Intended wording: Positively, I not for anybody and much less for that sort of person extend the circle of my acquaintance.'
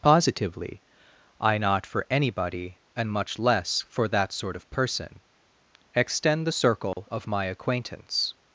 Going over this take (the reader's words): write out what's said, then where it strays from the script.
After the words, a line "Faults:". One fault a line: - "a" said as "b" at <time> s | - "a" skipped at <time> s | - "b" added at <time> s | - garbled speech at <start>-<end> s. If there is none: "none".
Positively, I not for anybody and much less for that sort of person extend the circle of my acquaintance.'
Faults:
none